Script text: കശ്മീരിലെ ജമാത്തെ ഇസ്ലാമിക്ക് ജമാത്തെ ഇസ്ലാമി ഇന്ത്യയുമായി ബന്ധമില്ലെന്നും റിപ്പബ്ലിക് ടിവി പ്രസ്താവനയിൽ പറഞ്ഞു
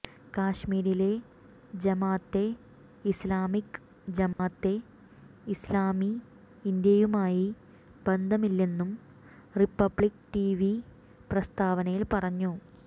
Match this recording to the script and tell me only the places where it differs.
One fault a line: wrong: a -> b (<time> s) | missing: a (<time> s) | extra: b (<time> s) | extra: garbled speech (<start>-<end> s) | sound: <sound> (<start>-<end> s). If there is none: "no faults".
sound: dropout (4.3-4.4 s)